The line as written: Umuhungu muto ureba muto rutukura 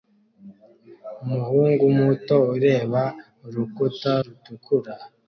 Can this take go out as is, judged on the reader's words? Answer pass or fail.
fail